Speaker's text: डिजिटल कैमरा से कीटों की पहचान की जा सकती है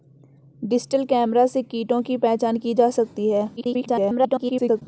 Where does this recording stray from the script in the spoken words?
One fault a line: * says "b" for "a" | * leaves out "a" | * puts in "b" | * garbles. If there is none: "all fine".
* garbles